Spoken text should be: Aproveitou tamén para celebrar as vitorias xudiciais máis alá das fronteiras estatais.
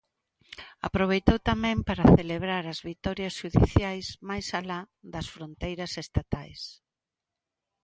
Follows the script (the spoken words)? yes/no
yes